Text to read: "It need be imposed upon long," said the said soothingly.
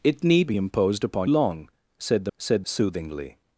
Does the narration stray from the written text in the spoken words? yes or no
no